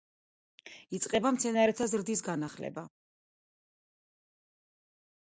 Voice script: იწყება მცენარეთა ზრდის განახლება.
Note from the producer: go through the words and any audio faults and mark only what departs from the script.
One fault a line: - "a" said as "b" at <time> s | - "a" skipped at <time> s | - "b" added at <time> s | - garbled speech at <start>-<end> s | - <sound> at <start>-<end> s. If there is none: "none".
none